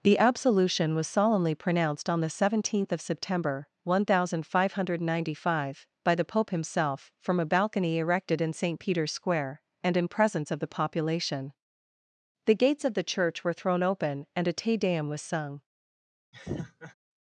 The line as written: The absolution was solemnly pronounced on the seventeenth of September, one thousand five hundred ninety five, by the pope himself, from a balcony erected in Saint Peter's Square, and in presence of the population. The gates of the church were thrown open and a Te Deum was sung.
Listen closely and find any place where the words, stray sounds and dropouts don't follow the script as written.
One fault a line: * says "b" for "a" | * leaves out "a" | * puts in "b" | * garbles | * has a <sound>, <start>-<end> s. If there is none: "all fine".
* has a laugh, 16.3-16.9 s